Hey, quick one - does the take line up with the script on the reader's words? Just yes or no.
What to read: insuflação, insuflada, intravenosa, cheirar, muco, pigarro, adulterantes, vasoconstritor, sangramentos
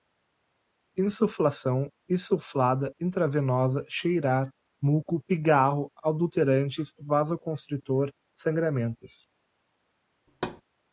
yes